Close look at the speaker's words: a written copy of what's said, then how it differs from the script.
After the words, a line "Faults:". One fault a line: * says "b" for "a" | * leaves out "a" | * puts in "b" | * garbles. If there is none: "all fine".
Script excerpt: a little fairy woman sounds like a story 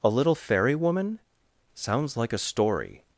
a little fairy woman sounds like a story
Faults:
all fine